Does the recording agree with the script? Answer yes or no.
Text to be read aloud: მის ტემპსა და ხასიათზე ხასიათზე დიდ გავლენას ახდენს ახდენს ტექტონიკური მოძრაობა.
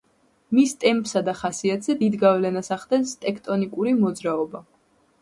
no